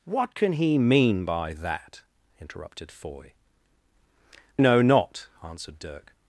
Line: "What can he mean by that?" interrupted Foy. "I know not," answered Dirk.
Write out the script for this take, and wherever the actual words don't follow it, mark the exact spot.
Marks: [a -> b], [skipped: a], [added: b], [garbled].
"What can he mean by that?" interrupted Foy. [skipped: "I] know not," answered Dirk.